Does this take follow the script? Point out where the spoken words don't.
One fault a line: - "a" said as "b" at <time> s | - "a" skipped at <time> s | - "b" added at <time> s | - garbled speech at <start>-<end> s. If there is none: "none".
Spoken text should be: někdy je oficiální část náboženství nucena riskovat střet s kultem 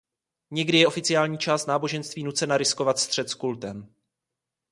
none